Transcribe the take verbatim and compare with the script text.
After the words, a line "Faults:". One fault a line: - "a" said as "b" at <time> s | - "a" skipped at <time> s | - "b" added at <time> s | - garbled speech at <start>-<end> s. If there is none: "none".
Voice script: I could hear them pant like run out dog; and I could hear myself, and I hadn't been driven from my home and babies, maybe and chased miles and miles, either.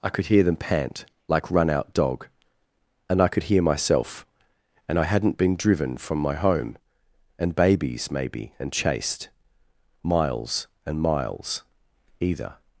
I could hear them pant like run out dog; and I could hear myself, and I hadn't been driven from my home and babies, maybe and chased miles and miles, either.
Faults:
none